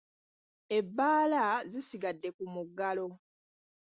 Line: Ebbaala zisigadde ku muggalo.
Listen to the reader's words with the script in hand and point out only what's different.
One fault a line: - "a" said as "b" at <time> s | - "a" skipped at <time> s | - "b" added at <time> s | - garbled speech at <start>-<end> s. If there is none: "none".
none